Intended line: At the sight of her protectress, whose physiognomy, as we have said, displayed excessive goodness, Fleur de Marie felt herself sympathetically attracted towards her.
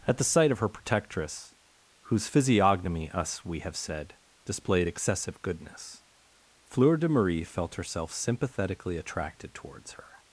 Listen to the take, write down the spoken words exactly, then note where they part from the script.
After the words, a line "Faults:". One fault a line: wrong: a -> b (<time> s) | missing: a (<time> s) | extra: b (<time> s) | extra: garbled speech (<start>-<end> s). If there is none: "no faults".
At the sight of her protectress, whose physiognomy, us we have said, displayed excessive goodness, Fleur de Marie felt herself sympathetically attracted towards her.
Faults:
wrong: as -> us (3.1 s)